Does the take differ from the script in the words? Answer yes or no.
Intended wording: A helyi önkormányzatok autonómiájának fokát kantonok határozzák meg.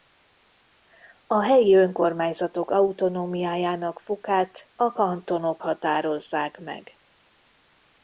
yes